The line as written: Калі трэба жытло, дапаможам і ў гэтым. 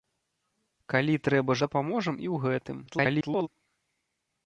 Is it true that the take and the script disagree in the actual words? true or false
true